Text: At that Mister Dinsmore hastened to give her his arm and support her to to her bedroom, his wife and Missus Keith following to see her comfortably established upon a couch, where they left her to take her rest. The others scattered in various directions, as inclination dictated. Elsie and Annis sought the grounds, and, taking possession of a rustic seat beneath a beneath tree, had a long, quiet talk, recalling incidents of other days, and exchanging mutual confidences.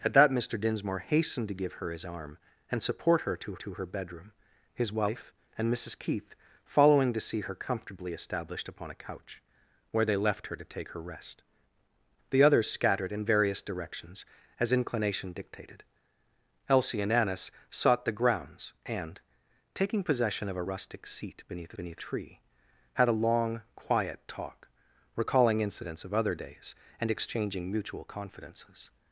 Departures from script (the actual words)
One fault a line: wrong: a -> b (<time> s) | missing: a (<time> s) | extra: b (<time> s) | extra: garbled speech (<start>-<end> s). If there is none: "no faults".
no faults